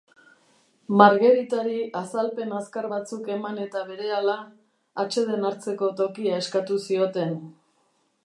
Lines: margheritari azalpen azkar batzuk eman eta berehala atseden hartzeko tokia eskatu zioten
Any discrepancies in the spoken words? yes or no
no